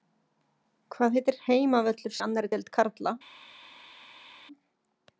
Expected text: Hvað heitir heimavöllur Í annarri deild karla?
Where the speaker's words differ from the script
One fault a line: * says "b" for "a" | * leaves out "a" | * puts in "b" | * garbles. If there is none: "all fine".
all fine